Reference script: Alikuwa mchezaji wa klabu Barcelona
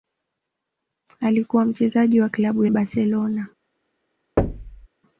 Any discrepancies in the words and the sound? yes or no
yes